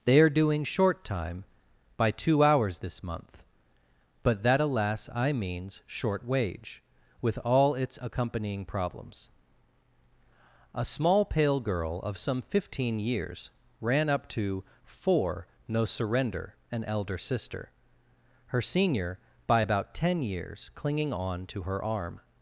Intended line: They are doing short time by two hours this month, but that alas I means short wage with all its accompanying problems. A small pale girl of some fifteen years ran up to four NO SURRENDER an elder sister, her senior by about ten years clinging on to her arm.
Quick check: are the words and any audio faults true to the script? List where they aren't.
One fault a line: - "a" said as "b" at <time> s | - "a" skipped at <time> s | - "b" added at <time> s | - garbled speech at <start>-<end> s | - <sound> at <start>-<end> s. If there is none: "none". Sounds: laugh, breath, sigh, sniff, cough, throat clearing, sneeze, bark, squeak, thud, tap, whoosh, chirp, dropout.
none